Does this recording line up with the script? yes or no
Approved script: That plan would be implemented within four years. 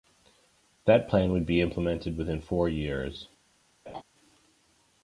yes